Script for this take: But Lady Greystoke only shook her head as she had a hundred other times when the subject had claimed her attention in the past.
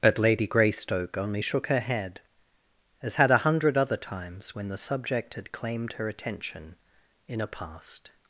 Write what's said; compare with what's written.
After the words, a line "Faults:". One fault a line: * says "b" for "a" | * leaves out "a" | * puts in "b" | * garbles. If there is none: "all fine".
But Lady Greystoke only shook her head as had a hundred other times when the subject had claimed her attention in a past.
Faults:
* leaves out "she"
* says "a" for "the"